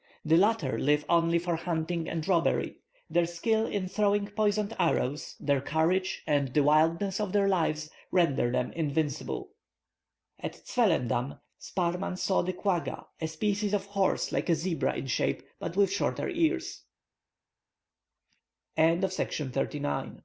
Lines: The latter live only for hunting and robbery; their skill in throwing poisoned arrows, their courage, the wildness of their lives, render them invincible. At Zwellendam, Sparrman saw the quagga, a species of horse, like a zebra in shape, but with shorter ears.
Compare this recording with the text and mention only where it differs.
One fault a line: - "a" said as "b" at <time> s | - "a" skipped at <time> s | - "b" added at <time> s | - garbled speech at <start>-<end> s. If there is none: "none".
- "and" added at 6.2 s